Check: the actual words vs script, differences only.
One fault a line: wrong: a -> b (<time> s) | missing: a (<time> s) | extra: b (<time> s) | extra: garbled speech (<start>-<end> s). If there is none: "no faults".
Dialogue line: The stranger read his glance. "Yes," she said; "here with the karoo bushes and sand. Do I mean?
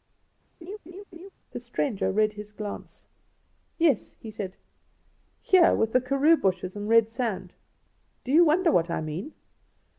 wrong: she -> he (4.2 s)
extra: red (6.9 s)
extra: you wonder what (8.3 s)